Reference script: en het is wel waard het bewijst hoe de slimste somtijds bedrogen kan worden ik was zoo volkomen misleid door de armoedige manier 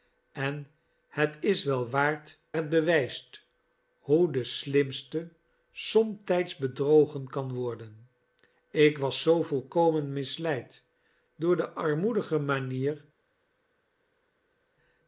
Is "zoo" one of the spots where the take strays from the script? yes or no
no